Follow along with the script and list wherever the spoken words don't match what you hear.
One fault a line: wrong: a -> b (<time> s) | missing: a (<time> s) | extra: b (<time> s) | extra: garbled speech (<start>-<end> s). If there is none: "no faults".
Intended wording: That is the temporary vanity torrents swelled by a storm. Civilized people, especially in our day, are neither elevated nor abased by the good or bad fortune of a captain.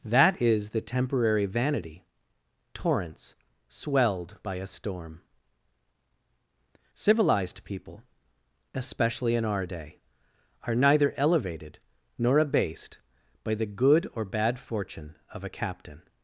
no faults